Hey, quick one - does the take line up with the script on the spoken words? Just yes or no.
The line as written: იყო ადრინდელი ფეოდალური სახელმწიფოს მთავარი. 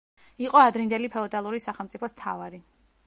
yes